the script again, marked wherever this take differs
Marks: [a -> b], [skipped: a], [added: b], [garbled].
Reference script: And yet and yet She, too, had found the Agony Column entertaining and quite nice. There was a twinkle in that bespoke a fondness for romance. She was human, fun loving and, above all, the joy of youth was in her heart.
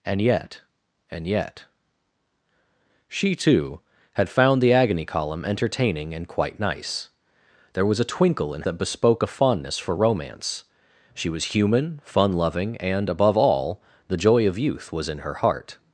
And yet and yet She, too, had found the Agony Column entertaining and quite nice. There was a twinkle in that bespoke a fondness for romance. She was human, fun loving and, above all, the joy of youth was in her heart.